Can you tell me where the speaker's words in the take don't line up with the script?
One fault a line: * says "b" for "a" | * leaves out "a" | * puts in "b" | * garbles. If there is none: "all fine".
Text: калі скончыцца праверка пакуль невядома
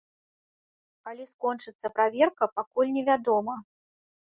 all fine